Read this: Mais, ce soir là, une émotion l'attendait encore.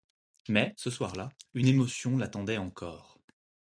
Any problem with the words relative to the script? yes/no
no